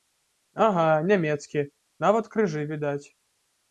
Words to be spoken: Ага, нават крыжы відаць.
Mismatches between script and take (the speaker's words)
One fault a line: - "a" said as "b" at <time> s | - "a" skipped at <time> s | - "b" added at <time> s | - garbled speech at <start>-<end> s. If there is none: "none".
- "нямецкі" added at 1.1 s